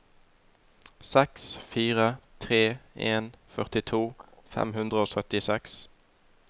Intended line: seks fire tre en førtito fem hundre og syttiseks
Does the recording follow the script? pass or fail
pass